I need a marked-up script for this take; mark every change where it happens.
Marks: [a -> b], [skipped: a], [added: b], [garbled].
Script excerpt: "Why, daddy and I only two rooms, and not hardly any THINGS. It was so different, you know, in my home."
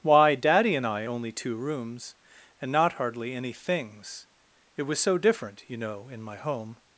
"Why, daddy and I only two rooms, and not hardly any THINGS. It was so different, you know, in my home."